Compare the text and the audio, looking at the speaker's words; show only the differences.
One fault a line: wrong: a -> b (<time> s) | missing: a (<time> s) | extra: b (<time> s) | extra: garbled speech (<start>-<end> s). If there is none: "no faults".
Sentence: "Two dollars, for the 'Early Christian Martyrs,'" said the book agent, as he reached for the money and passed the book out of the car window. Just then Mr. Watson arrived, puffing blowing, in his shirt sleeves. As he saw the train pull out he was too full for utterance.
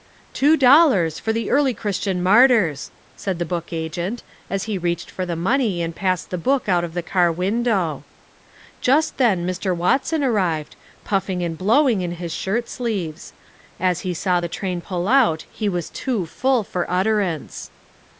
extra: and (11.4 s)